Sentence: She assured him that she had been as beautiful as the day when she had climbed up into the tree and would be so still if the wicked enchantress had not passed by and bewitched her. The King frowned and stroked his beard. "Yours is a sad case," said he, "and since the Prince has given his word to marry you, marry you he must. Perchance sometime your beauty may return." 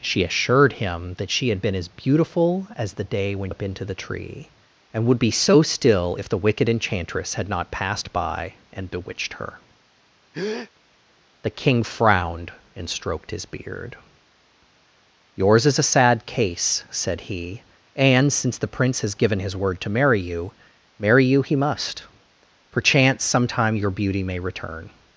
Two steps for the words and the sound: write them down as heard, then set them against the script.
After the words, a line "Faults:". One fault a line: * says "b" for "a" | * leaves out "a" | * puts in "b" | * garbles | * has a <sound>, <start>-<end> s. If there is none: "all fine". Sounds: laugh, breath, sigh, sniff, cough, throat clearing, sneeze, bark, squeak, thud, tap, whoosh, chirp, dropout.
She assured him that she had been as beautiful as the day when up into the tree and would be so still if the wicked enchantress had not passed by and bewitched her. The King frowned and stroked his beard. "Yours is a sad case," said he, "and since the Prince has given his word to marry you, marry you he must. Perchance sometime your beauty may return."
Faults:
* leaves out "she had climbed"
* has a breath, 10.3-10.7 s